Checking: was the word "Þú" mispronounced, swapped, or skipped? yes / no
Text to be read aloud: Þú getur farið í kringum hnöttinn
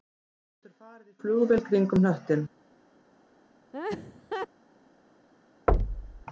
no